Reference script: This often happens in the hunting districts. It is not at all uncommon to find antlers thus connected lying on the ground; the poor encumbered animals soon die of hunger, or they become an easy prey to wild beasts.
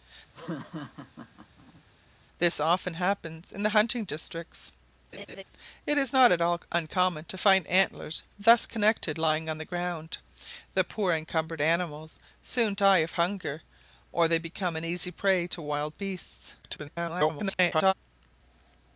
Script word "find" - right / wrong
right